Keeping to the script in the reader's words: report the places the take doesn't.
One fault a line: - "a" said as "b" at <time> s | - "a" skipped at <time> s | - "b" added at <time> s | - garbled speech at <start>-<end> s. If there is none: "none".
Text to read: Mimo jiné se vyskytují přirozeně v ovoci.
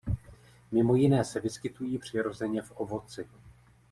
none